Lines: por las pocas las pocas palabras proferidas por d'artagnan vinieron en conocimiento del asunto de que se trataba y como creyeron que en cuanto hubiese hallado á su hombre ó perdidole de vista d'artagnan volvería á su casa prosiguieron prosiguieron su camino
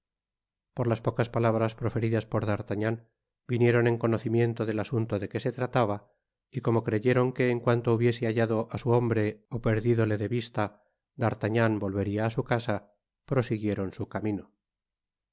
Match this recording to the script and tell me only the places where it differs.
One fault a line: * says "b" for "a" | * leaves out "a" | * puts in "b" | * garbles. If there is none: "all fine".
* leaves out "las pocas"
* leaves out "prosiguieron"